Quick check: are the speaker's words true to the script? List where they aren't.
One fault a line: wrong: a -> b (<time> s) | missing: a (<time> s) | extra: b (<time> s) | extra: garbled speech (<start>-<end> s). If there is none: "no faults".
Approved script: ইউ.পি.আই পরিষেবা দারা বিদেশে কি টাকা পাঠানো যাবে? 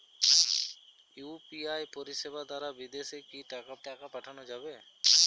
extra: টাকা (3.9 s)